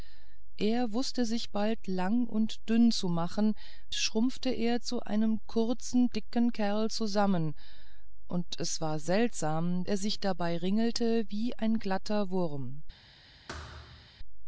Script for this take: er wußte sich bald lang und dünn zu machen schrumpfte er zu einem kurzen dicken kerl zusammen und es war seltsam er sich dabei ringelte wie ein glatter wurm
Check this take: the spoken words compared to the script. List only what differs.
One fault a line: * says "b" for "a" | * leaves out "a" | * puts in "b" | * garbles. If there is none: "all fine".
all fine